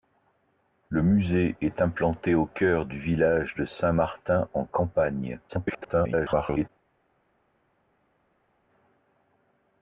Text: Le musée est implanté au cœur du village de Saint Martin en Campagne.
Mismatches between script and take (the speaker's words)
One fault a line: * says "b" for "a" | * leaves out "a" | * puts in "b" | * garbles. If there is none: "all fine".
* garbles